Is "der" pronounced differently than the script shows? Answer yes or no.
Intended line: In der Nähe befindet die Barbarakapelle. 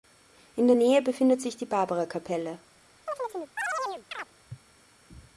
no